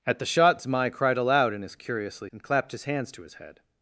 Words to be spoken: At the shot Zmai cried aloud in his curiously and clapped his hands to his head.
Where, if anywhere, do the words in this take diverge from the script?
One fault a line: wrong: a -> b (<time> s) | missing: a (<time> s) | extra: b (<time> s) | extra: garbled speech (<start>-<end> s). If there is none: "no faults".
no faults